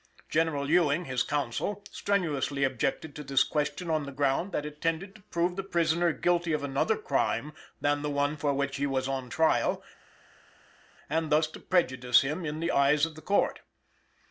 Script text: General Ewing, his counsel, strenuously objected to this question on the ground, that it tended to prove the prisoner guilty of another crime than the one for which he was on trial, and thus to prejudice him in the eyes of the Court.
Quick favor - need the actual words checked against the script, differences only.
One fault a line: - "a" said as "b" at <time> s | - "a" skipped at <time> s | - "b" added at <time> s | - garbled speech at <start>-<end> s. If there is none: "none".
none